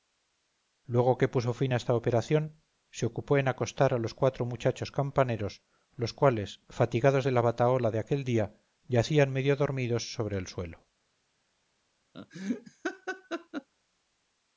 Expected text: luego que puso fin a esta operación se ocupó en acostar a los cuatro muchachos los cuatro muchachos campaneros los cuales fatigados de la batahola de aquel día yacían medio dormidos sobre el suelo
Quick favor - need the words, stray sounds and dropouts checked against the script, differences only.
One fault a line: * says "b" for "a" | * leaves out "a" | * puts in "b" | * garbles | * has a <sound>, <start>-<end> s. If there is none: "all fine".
* leaves out "los cuatro muchachos"
* has a laugh, 12.1-13.7 s